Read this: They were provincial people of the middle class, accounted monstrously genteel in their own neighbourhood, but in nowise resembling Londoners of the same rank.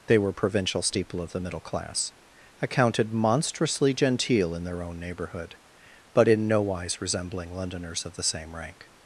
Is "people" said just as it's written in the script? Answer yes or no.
no